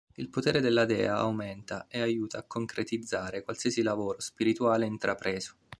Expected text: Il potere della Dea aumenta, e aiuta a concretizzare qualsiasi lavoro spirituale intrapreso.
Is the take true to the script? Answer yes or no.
yes